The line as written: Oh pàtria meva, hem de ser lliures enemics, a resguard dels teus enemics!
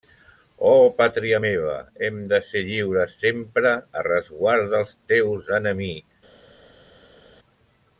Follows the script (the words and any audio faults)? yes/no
no